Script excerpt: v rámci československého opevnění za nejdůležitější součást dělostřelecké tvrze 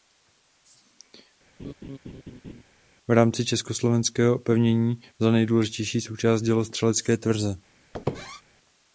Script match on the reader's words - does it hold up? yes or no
yes